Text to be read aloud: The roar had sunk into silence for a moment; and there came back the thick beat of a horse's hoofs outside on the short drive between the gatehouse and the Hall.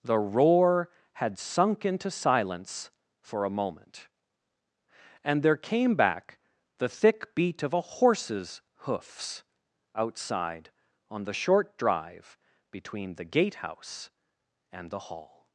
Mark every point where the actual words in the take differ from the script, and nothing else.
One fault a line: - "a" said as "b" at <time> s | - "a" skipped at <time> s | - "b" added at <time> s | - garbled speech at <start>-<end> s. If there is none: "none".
none